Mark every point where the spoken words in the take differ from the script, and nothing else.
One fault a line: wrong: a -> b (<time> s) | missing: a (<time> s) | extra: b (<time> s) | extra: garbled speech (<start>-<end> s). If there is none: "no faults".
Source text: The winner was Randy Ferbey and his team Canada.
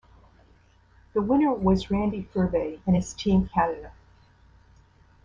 no faults